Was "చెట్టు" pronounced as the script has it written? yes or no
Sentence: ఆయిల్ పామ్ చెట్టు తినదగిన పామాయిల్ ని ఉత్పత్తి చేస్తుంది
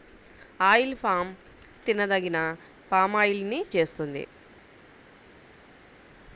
no